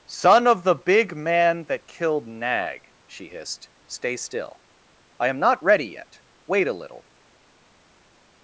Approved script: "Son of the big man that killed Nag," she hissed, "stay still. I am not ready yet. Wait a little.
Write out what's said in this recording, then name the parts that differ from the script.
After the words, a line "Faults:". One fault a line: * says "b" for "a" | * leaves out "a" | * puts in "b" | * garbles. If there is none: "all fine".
"Son of the big man that killed Nag," she hissed, "stay still. I am not ready yet. Wait a little.
Faults:
all fine